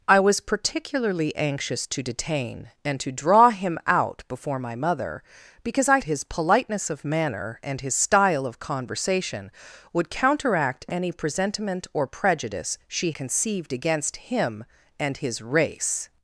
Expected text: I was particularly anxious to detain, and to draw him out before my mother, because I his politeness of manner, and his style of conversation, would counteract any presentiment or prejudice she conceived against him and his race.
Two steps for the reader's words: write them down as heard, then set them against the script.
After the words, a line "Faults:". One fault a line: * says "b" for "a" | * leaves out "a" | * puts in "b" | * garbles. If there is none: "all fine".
I was particularly anxious to detain, and to draw him out before my mother, because I his politeness of manner, and his style of conversation, would counteract any presentiment or prejudice she conceived against him and his race.
Faults:
all fine